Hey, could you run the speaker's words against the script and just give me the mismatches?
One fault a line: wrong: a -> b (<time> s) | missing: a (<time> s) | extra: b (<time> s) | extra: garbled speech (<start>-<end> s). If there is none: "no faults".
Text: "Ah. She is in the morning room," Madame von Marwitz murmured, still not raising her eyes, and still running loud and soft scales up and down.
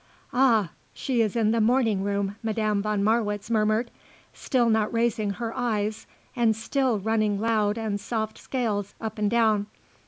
no faults